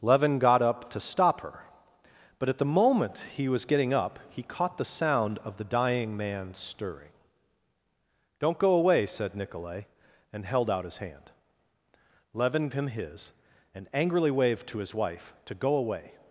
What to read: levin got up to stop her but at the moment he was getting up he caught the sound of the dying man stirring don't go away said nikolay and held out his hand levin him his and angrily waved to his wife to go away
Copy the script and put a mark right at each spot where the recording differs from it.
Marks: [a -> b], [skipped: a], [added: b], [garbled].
levin got up to stop her but at the moment he was getting up he caught the sound of the dying man stirring don't go away said nikolay and held out his hand levin him his and angrily waved to his wife to go away